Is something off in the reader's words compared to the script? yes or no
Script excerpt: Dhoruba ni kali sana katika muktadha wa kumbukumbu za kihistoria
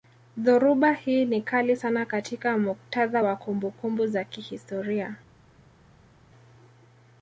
yes